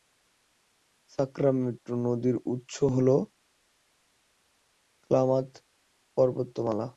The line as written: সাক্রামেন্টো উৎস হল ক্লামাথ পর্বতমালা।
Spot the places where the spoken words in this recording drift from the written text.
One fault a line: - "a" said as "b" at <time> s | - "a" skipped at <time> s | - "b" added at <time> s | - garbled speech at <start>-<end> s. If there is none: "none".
- "নদীর" added at 2.0 s